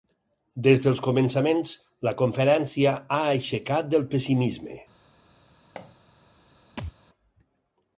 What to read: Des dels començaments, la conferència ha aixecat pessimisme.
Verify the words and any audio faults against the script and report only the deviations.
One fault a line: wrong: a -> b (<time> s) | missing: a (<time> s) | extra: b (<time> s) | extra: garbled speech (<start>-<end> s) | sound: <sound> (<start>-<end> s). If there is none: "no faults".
extra: del (4.0 s)
sound: thud (5.8-6.0 s)
sound: thud (6.8-6.9 s)